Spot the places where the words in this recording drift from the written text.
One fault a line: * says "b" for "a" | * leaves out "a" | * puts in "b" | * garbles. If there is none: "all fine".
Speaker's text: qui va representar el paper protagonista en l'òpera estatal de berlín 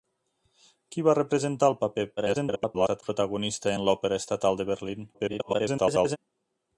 * garbles
* garbles